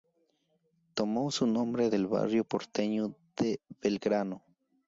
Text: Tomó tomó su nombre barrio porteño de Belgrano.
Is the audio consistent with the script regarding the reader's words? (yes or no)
no